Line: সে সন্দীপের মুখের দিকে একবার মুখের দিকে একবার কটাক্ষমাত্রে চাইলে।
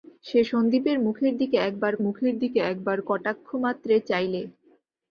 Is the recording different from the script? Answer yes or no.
no